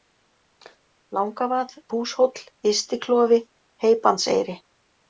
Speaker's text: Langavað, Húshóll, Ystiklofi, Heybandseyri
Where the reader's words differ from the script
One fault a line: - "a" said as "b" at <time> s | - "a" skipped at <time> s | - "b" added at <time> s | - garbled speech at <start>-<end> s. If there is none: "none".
none